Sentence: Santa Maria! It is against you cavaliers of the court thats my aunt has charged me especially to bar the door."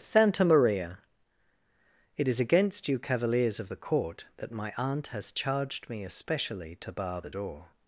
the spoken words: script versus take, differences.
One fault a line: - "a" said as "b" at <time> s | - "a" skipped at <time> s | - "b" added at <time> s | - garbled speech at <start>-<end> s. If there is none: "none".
- "thats" said as "that" at 4.4 s